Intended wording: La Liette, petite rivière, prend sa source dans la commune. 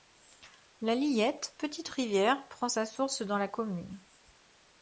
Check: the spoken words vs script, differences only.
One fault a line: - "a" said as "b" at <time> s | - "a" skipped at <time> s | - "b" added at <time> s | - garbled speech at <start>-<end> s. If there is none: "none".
none